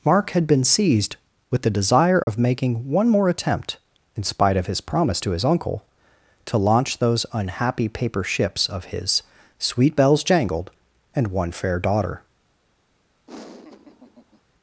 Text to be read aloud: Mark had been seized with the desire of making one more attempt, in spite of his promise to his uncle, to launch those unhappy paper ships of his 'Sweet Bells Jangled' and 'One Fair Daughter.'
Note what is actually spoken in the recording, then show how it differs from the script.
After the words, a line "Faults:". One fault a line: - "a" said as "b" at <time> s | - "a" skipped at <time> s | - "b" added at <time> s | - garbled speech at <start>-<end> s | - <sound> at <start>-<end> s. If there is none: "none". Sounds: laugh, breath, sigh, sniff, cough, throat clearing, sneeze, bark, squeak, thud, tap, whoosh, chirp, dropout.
Mark had been seized with the desire of making one more attempt, in spite of his promise to his uncle, to launch those unhappy paper ships of his 'Sweet Bells Jangled' and 'One Fair Daughter.'
Faults:
- dropout at 2.2-2.3 s
- laugh at 13.3-14.4 s